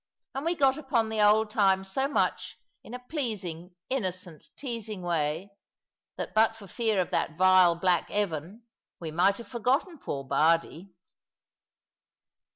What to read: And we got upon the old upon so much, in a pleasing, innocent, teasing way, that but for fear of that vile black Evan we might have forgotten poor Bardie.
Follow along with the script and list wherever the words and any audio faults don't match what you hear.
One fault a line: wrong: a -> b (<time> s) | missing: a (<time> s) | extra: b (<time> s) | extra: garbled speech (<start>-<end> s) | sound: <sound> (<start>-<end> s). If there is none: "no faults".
wrong: upon -> times (1.5 s)